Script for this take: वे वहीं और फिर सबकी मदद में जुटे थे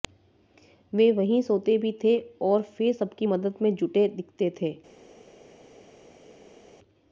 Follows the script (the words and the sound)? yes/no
no